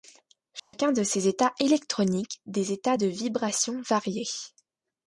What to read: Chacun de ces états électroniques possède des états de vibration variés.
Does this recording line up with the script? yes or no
no